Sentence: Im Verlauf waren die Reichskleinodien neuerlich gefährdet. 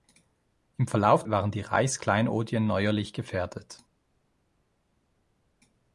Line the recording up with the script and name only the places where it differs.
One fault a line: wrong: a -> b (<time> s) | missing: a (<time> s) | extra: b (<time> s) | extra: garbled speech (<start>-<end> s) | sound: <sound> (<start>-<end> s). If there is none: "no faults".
no faults